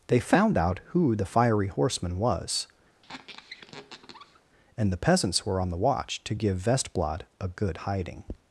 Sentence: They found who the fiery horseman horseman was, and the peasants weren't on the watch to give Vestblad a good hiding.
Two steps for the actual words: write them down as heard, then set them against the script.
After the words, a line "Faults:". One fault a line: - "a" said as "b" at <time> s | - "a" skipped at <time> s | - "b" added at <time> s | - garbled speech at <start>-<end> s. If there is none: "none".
They found out who the fiery horseman was, and the peasants were on the watch to give Vestblad a good hiding.
Faults:
- "out" added at 0.6 s
- "horseman" skipped at 2.2 s
- "weren't" said as "were" at 5.4 s